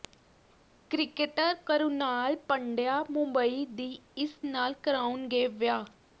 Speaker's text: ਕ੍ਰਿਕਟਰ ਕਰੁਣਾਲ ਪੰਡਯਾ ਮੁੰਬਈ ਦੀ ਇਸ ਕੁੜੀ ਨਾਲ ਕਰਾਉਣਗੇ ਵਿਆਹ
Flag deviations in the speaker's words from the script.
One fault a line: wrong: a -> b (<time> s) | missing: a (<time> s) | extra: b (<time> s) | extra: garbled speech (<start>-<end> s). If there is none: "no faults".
missing: ਕੁੜੀ (4.4 s)